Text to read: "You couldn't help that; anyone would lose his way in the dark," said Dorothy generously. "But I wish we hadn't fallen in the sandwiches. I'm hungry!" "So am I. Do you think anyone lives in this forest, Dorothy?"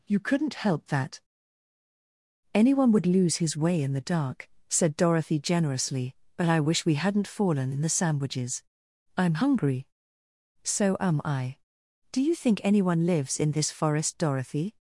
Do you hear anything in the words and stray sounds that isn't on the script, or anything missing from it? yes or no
no